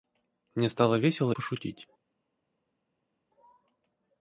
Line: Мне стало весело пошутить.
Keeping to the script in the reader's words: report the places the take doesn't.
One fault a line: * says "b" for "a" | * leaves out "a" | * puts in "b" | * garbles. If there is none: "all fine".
all fine